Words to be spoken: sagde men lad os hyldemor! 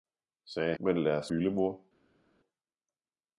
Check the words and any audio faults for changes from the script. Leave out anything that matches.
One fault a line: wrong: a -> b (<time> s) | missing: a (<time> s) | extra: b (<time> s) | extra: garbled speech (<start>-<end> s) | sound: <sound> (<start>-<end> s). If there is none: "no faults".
no faults